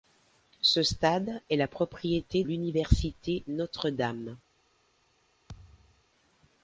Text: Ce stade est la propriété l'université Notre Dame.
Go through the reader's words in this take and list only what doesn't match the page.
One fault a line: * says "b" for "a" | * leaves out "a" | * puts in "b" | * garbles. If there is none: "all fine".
all fine